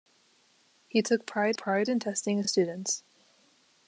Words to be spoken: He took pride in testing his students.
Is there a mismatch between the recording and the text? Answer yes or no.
yes